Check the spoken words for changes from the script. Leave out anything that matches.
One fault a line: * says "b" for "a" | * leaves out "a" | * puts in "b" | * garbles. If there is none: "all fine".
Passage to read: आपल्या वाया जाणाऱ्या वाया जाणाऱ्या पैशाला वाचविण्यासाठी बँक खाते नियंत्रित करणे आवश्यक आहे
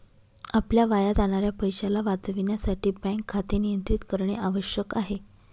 * leaves out "वाया जाणाऱ्या"